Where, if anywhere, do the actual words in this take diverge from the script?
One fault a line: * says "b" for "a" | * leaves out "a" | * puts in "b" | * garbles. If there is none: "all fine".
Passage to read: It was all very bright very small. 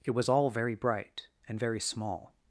* puts in "and"